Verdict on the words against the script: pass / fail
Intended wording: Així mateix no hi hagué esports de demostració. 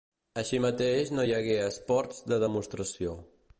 pass